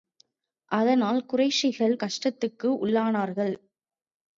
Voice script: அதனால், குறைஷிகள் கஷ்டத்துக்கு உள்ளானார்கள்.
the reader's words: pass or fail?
pass